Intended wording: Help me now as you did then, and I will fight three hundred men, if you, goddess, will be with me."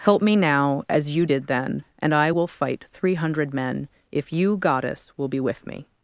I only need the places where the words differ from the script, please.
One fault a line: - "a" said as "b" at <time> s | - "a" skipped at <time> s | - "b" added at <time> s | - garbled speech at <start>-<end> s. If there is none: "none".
none